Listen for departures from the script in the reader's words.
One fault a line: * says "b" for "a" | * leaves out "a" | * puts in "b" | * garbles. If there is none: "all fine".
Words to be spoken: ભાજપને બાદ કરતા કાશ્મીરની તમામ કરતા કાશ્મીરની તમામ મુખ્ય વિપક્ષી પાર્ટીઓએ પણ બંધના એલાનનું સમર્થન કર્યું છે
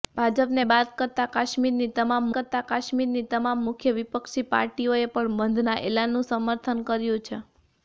all fine